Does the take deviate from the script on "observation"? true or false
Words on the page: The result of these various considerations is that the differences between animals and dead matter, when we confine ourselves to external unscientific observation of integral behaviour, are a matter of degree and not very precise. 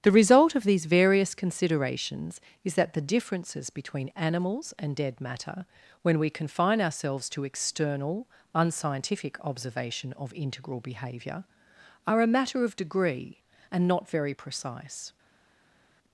false